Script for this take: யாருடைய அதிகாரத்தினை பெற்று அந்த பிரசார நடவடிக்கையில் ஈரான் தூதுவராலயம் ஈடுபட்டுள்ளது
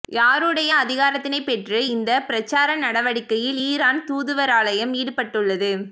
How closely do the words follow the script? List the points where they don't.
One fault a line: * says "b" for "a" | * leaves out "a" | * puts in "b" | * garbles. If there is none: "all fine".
* says "இந்த" for "அந்த"